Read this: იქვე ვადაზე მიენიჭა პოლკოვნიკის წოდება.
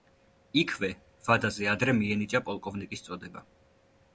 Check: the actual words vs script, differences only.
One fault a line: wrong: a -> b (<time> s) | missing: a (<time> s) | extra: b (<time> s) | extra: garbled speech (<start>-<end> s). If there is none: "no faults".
extra: ადრე (1.7 s)